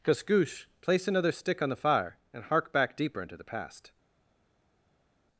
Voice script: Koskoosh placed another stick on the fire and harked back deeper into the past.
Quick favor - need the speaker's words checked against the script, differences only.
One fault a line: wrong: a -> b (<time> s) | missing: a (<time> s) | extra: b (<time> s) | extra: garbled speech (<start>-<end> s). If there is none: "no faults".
wrong: placed -> place (0.8 s)
wrong: harked -> hark (2.5 s)